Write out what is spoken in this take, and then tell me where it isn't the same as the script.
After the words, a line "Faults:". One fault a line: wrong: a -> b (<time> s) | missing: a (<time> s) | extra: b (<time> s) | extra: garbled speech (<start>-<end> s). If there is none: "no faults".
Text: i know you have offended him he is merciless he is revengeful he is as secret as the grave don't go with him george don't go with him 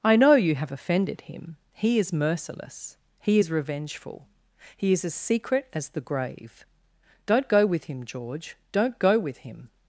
i know you have offended him he is merciless he is revengeful he is as secret as the grave don't go with him george don't go with him
Faults:
no faults